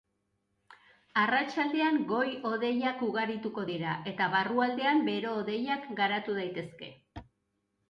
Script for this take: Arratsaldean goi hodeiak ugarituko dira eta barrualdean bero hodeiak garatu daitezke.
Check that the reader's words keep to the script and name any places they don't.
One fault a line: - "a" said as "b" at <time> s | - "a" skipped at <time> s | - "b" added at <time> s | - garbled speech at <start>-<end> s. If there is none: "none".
none